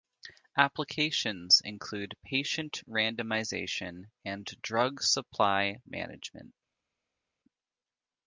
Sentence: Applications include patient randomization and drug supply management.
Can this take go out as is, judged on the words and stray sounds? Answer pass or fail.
pass